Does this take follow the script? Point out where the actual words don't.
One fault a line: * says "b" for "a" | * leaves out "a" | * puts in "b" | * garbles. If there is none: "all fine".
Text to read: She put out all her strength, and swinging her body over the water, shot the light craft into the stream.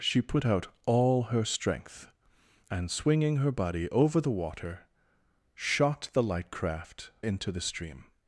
all fine